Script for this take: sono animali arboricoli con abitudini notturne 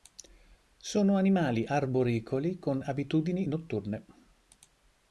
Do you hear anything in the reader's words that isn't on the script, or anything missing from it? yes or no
no